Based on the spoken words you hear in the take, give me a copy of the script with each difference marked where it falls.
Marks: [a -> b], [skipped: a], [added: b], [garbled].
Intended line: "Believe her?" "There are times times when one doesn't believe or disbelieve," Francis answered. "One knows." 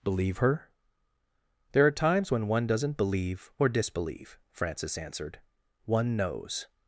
"Believe her?" "There are times [skipped: times] when one doesn't believe or disbelieve," Francis answered. "One knows."